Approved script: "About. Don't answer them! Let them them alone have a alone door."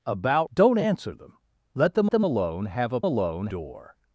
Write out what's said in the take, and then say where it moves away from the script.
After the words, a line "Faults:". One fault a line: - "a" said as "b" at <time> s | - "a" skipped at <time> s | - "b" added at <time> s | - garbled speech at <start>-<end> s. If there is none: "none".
"About. Don't answer them! Let them them alone have a alone door."
Faults:
none